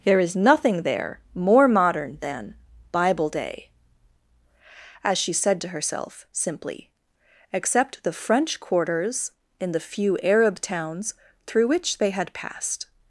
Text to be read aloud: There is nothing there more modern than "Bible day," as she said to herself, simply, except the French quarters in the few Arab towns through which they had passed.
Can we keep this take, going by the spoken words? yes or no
yes